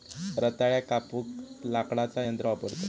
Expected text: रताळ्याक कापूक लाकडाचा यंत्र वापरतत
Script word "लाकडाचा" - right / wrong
right